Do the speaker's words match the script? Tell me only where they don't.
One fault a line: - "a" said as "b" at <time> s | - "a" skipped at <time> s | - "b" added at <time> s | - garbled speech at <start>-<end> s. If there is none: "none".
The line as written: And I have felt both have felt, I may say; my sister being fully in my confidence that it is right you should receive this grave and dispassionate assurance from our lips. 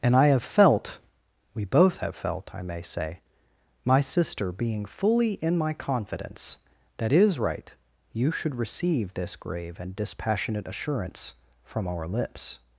- "we" added at 1.5 s